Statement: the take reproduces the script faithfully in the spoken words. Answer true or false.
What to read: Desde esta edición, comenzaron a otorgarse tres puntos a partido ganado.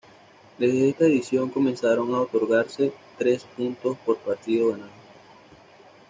false